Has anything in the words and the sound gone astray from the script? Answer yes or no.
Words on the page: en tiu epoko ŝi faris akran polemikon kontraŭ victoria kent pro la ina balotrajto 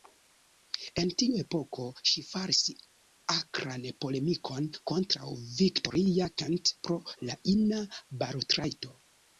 no